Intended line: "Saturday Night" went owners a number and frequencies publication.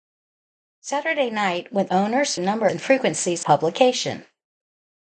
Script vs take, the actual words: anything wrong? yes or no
no